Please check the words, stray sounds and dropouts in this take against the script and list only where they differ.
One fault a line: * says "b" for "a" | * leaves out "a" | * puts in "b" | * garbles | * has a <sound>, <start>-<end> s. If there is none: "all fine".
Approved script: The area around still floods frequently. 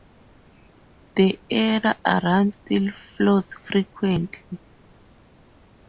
all fine